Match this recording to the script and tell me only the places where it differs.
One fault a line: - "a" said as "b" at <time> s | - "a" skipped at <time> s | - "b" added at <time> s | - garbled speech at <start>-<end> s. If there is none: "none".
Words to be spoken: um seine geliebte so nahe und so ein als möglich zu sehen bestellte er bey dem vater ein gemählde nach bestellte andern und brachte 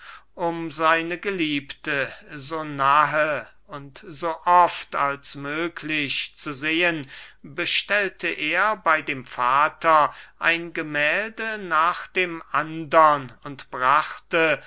- "ein" said as "oft" at 4.5 s
- "bestellte" said as "dem" at 12.1 s